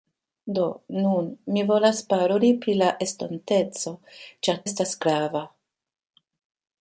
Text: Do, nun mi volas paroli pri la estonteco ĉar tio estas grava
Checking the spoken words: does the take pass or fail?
fail